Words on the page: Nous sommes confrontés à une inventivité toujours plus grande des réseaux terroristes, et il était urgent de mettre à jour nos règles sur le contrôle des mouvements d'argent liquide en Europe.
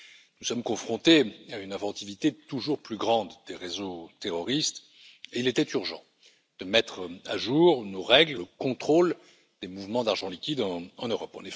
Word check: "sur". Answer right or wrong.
wrong